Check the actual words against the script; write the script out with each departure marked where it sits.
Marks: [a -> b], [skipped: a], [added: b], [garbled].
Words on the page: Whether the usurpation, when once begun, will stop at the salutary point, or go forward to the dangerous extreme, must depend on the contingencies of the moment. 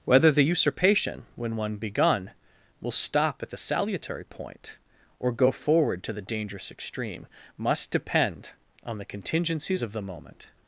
Whether the usurpation, when [once -> one] begun, will stop at the salutary point, or go forward to the dangerous extreme, must depend on the contingencies of the moment.